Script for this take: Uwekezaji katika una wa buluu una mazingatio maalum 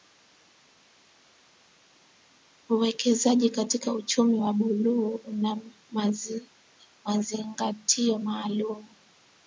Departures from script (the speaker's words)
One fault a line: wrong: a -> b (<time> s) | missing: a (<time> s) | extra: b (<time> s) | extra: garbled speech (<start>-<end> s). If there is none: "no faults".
wrong: una -> uchumi (3.9 s)